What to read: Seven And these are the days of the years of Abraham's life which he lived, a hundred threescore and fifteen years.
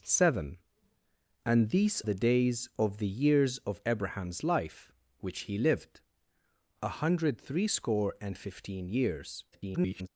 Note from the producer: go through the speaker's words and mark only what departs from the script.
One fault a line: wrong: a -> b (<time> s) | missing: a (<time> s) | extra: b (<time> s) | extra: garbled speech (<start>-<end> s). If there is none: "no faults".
missing: are (2.0 s)
extra: garbled speech (9.5-10.1 s)